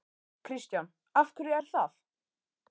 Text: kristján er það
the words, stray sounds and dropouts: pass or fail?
fail